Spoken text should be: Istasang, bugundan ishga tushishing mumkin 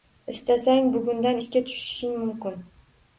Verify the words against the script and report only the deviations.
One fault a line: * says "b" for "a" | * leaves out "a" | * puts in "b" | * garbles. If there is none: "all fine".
all fine